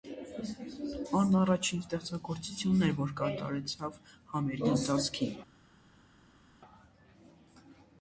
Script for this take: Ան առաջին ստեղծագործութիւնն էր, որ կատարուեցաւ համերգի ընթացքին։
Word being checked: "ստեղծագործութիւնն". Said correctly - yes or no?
yes